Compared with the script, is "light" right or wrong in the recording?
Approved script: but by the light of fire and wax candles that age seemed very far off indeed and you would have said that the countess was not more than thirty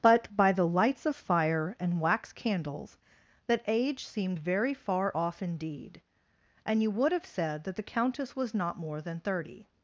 wrong